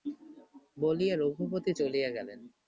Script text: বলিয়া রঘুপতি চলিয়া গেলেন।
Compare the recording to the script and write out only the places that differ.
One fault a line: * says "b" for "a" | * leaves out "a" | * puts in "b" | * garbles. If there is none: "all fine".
all fine